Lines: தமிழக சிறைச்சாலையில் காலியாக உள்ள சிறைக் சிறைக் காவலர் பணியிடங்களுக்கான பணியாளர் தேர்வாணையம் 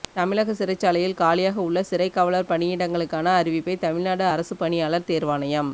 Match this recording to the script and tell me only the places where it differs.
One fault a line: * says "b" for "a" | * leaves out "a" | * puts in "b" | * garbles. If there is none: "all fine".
* leaves out "சிறைக்"
* puts in "அறிவிப்பை தமிழ்நாடு அரசுப்"